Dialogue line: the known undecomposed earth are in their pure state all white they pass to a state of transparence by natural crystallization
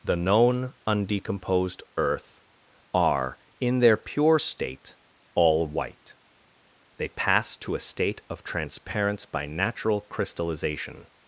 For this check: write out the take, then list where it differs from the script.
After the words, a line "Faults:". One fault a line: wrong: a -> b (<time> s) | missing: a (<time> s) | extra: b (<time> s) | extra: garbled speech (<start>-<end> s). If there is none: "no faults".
the known undecomposed earth are in their pure state all white they pass to a state of transparence by natural crystallization
Faults:
no faults